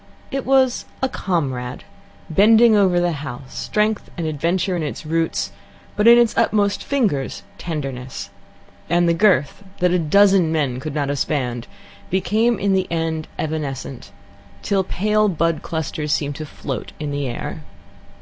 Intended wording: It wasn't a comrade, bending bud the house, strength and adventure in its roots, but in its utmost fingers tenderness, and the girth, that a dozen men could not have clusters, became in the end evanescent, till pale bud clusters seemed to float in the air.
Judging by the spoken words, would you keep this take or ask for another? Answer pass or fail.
fail